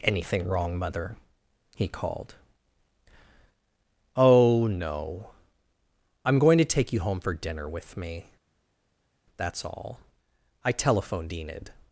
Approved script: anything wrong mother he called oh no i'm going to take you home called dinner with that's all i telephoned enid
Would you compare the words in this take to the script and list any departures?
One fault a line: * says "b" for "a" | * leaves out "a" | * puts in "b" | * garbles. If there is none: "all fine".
* says "for" for "called"
* puts in "me"